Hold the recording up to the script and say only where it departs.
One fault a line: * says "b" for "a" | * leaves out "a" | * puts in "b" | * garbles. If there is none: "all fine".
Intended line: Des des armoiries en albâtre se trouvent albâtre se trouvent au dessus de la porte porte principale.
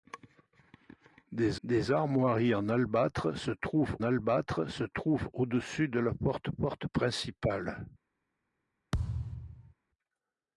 all fine